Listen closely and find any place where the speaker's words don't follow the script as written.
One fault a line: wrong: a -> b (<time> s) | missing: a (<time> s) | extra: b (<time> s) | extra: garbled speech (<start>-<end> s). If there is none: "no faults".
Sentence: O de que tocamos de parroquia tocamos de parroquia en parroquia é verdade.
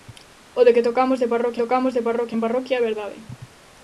no faults